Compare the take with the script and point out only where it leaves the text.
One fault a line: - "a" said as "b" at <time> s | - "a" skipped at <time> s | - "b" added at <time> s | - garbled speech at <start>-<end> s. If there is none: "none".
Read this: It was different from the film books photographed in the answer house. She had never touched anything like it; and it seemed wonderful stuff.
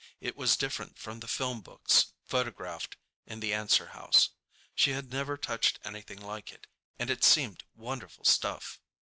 none